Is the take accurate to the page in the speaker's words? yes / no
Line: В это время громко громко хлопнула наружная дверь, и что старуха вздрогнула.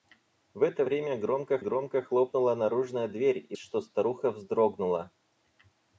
yes